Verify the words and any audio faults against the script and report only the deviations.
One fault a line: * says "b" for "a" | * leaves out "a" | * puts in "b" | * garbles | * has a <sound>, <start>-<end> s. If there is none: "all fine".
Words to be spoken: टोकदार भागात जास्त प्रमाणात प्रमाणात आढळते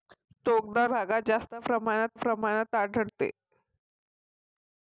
all fine